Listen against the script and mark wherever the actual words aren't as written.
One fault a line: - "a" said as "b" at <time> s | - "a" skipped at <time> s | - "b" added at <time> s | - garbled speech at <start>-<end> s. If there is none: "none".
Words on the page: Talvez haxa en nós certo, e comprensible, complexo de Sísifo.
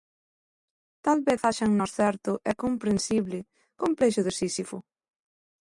none